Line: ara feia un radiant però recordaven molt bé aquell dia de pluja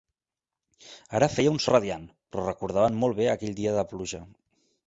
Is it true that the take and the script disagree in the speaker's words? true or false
false